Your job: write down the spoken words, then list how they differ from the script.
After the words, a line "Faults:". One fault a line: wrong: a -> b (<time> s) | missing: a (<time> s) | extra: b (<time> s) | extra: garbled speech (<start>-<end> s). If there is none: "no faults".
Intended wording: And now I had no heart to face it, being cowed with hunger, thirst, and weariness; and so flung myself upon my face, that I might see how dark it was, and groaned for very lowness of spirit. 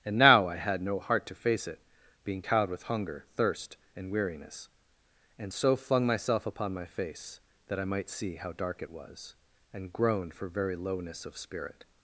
And now I had no heart to face it, being cowed with hunger, thirst, and weariness; and so flung myself upon my face, that I might see how dark it was, and groaned for very lowness of spirit.
Faults:
no faults